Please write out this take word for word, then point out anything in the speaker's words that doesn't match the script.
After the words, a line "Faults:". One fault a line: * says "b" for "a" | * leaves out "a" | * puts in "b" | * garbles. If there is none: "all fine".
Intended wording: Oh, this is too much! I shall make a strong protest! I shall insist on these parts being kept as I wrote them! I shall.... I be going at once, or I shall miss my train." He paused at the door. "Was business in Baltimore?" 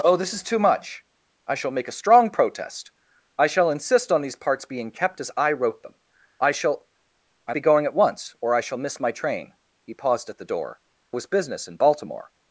Oh, this is too much! I shall make a strong protest! I shall insist on these parts being kept as I wrote them! I shall.... I be going at once, or I shall miss my train." He paused at the door. "Was business in Baltimore?"
Faults:
all fine